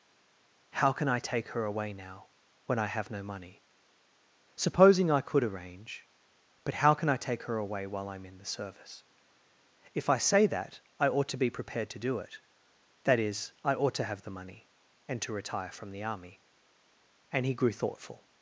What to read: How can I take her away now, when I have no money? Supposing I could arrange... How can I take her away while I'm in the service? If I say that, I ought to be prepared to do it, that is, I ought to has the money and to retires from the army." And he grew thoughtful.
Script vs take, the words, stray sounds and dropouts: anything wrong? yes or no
yes